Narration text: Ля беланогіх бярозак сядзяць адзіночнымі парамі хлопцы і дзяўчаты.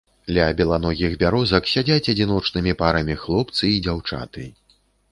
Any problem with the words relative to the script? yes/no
no